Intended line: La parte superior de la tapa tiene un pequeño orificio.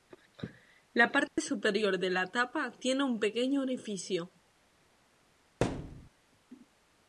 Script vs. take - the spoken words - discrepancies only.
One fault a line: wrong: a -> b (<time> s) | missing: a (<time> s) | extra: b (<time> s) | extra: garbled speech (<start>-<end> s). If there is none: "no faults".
no faults